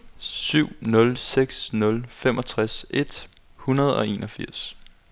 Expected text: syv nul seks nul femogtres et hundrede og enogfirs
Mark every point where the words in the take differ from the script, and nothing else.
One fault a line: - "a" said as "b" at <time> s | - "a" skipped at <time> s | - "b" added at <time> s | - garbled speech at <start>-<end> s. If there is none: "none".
none